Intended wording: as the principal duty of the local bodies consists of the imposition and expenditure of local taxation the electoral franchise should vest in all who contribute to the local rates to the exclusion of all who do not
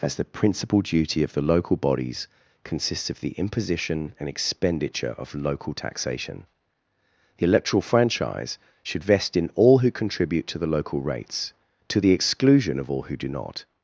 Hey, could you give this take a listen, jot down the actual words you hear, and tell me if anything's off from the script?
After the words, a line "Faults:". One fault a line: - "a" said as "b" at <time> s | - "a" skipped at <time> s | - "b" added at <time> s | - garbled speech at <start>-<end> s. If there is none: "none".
as the principal duty of the local bodies consists of the imposition and expenditure of local taxation the electoral franchise should vest in all who contribute to the local rates to the exclusion of all who do not
Faults:
none